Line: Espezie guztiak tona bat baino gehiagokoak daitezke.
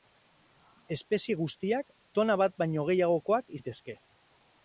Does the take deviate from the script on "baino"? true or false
false